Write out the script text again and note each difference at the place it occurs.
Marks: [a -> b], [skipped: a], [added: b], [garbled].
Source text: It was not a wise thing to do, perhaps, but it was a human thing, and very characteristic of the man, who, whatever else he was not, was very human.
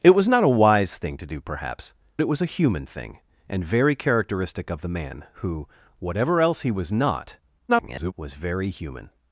It was not a wise thing to do, perhaps, [skipped: but] it was a human thing, and very characteristic of the man, who, whatever else he was not, [garbled] was very human.